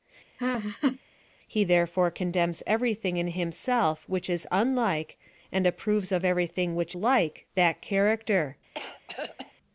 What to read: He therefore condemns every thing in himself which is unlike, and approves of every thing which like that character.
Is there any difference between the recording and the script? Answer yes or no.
no